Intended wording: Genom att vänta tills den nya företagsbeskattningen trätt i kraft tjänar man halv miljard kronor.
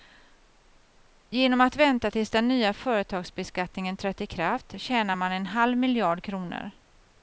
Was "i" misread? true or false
false